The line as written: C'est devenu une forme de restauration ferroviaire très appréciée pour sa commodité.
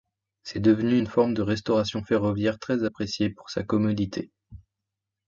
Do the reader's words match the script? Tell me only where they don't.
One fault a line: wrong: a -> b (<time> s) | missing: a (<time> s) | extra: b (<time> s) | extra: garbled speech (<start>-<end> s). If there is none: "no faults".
no faults